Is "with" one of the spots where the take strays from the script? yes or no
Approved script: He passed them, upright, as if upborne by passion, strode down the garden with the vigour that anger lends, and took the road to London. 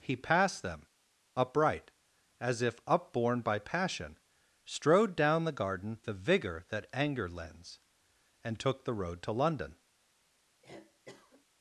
yes